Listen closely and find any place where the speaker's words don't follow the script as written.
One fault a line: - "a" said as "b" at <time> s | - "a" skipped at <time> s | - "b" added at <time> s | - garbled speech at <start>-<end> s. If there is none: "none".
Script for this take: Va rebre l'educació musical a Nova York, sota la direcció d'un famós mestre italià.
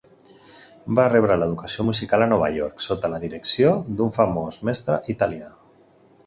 none